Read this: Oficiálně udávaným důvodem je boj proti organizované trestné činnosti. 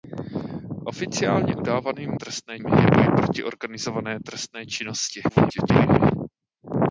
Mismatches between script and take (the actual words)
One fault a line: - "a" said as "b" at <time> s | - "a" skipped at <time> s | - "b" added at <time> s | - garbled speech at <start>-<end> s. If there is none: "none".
- "důvodem" said as "trestné" at 2.1 s
- garbled speech at 5.3-6.1 s